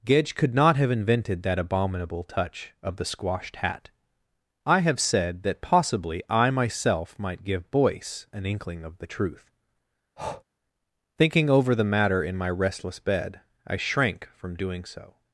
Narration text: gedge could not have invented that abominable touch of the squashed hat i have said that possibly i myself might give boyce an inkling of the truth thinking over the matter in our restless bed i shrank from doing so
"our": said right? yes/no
no